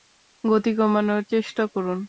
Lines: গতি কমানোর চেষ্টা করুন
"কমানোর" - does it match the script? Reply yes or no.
yes